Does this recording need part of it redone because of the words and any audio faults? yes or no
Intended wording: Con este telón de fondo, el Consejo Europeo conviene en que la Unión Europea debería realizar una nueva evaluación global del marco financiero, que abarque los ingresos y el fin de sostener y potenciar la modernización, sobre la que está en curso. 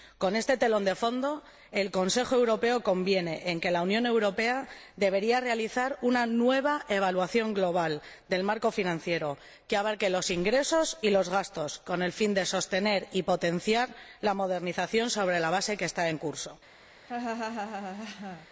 yes